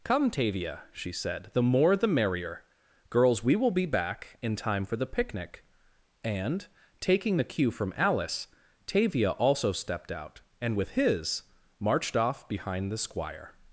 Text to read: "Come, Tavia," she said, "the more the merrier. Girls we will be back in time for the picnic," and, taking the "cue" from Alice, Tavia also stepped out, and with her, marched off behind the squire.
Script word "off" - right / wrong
right